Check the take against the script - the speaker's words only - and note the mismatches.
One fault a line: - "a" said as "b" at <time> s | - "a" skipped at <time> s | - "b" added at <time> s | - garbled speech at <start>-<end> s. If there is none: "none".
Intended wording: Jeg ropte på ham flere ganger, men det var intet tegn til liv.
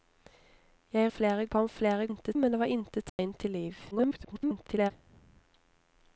- "ropte" said as "flere" at 1.1 s
- "ganger" said as "intet" at 2.1 s
- garbled speech at 3.9-4.9 s